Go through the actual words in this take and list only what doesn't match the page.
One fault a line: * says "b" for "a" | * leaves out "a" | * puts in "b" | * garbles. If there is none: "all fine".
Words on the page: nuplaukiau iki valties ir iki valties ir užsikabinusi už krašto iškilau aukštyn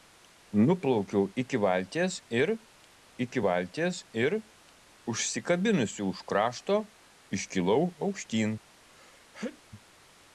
all fine